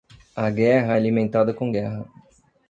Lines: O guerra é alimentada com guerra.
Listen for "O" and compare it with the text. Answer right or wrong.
wrong